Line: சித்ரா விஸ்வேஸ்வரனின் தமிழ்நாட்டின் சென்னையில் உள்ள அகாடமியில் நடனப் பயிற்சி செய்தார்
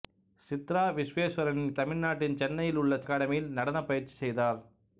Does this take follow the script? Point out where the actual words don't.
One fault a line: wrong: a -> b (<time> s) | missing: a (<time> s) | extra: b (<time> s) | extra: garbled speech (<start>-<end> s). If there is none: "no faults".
no faults